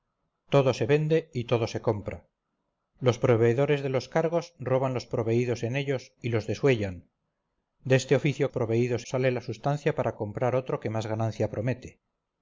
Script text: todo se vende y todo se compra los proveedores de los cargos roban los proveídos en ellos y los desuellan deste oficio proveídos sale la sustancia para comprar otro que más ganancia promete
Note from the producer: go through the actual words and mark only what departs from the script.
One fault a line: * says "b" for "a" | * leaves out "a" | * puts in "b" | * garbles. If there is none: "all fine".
all fine